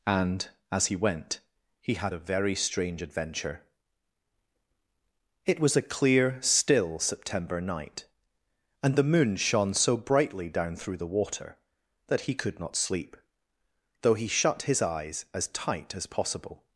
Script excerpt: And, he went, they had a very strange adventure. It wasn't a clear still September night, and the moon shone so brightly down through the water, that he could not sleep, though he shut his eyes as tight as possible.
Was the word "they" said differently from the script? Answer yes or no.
yes